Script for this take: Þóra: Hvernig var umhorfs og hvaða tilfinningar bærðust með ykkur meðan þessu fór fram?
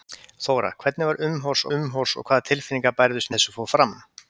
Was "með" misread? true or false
true